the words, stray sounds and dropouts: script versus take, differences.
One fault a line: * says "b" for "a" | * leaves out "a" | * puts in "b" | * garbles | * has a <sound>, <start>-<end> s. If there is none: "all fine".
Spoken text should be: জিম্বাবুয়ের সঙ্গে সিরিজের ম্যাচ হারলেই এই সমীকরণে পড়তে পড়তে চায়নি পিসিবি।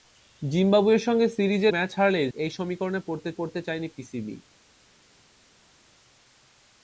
all fine